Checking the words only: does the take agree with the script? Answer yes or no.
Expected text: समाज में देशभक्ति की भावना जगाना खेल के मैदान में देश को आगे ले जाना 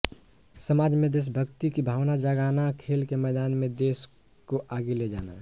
yes